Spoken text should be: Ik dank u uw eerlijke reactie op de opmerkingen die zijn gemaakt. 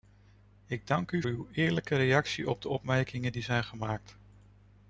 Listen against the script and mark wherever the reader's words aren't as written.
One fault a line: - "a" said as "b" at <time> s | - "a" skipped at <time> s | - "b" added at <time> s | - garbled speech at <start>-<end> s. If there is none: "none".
none